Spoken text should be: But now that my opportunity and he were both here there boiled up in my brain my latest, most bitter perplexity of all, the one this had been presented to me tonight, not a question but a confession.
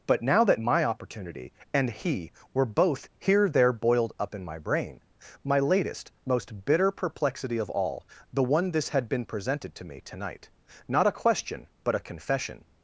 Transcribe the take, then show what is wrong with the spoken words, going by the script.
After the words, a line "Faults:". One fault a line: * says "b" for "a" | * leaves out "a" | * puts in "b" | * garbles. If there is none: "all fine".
But now that my opportunity and he were both here there boiled up in my brain my latest, most bitter perplexity of all, the one this had been presented to me tonight, not a question but a confession.
Faults:
all fine